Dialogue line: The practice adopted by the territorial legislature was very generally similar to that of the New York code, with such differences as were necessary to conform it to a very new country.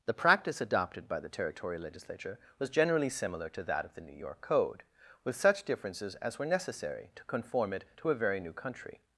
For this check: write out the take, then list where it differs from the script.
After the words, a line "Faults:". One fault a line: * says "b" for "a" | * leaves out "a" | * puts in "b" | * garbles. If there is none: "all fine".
The practice adopted by the territorial legislature was generally similar to that of the New York code, with such differences as were necessary to conform it to a very new country.
Faults:
* leaves out "very"